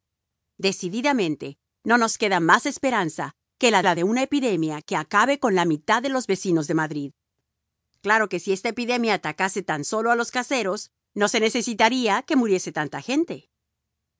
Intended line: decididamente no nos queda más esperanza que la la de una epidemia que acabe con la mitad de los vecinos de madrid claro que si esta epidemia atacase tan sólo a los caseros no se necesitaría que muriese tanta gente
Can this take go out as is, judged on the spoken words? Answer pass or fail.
pass